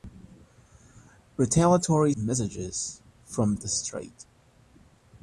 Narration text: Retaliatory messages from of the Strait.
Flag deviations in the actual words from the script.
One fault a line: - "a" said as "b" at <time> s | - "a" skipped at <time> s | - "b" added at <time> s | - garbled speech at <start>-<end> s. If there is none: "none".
none